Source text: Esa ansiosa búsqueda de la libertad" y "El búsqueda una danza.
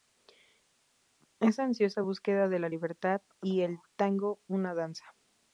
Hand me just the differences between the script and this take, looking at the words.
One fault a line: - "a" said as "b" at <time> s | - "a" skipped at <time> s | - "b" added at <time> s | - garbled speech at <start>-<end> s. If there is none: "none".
- "búsqueda" said as "tango" at 4.0 s